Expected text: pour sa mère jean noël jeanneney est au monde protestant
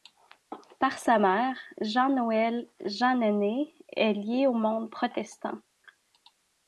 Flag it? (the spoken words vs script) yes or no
yes